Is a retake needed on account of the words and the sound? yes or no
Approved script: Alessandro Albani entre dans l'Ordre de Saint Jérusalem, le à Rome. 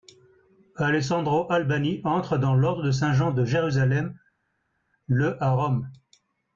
yes